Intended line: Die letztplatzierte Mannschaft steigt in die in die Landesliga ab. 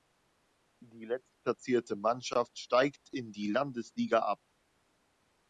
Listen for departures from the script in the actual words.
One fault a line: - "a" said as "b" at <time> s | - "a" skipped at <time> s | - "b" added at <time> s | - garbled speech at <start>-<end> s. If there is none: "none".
- "in die" skipped at 3.5 s